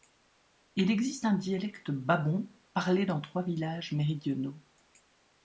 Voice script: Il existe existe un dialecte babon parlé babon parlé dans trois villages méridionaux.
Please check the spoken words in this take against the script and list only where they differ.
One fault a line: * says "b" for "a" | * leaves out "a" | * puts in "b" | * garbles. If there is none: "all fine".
* leaves out "existe"
* leaves out "babon parlé"